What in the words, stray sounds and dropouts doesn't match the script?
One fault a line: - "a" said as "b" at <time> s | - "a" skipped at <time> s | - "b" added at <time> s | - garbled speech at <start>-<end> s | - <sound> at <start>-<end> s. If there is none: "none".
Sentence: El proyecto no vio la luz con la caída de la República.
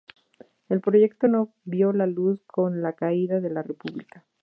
none